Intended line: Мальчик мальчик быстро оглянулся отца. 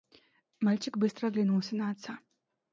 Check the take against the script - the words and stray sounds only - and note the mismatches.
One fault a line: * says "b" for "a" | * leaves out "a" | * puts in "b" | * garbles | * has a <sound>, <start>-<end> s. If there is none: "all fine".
* leaves out "мальчик"
* puts in "на"